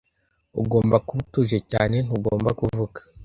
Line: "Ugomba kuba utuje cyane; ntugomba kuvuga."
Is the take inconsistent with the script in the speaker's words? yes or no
no